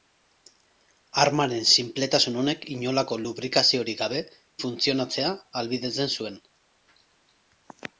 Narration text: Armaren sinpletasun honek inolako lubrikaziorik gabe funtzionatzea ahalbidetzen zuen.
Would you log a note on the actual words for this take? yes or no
no